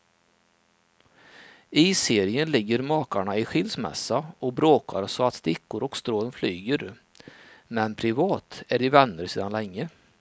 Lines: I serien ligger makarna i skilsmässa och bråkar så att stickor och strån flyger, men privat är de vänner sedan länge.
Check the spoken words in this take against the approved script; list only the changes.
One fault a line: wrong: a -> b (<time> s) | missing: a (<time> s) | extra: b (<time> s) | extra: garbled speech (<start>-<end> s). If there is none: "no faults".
no faults